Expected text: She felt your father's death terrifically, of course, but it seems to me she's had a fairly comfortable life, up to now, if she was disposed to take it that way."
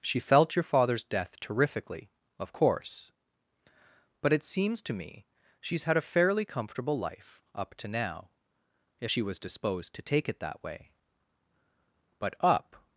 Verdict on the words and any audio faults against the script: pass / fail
fail